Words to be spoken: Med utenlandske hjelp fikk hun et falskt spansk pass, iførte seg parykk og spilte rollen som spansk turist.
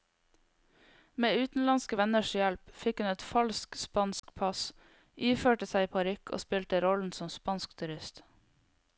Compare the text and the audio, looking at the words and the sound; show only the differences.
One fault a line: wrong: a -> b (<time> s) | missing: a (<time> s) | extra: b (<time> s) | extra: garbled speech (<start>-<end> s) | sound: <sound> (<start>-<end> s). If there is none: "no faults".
extra: venners (2.0 s)
sound: dropout (4.2-4.2 s)